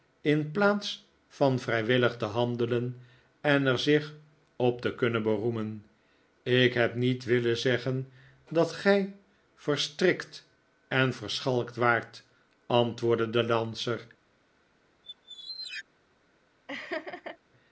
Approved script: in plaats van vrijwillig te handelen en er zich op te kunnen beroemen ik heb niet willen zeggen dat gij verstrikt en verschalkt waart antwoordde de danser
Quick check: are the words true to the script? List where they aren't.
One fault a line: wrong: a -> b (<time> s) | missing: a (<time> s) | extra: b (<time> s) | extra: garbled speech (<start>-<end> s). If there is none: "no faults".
no faults